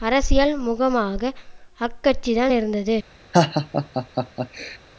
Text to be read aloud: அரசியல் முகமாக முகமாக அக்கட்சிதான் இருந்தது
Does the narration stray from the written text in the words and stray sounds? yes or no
yes